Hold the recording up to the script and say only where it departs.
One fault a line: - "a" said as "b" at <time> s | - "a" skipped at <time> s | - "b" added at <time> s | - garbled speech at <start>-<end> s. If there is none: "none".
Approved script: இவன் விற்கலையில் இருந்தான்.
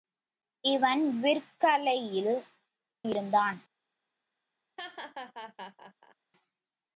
none